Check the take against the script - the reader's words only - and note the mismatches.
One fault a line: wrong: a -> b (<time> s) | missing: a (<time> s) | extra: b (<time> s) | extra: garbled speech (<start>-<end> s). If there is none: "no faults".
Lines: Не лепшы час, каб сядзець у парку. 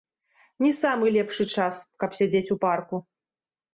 extra: самы (0.8 s)